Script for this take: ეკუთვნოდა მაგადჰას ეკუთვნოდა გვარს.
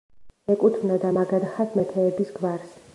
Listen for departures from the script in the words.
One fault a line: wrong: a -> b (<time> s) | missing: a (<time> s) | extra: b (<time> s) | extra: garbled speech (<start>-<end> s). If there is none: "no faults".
wrong: ეკუთვნოდა -> მეფეების (1.8 s)